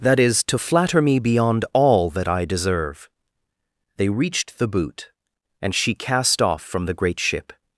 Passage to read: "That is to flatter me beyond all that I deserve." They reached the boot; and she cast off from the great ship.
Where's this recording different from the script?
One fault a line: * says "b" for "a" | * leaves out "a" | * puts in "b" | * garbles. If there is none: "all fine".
all fine